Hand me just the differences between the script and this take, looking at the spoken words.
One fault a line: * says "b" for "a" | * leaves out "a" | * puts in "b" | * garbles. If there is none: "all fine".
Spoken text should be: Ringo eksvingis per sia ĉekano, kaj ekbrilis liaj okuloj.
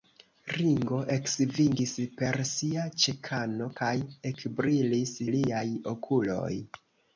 all fine